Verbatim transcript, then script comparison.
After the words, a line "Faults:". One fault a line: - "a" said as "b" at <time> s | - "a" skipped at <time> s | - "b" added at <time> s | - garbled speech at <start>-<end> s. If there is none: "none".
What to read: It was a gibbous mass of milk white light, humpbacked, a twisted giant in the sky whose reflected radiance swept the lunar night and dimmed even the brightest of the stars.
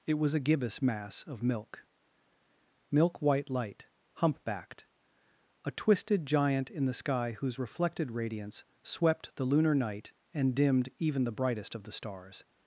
It was a gibbous mass of milk milk white light, humpbacked, a twisted giant in the sky whose reflected radiance swept the lunar night and dimmed even the brightest of the stars.
Faults:
- "milk" added at 2.9 s